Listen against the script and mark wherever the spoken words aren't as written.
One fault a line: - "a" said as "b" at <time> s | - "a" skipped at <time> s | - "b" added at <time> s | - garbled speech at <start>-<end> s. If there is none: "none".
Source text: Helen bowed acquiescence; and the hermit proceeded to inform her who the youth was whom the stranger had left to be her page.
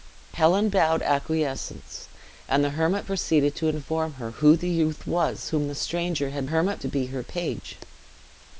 - "left" said as "hermit" at 6.4 s